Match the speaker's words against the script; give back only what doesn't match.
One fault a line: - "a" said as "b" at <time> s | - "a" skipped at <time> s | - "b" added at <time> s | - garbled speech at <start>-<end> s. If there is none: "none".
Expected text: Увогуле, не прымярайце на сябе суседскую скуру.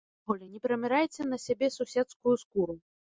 none